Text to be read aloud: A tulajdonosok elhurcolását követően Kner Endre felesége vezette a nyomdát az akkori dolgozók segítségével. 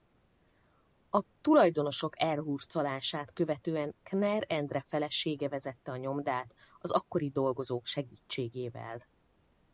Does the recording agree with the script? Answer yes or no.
yes